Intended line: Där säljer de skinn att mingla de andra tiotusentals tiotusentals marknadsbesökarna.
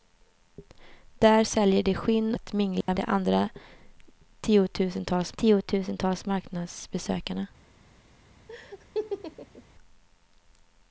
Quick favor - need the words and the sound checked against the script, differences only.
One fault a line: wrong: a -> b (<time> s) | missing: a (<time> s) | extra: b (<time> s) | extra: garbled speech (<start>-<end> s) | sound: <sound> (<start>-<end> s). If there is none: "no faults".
sound: dropout (2.8-2.9 s)
sound: laugh (8.5-9.6 s)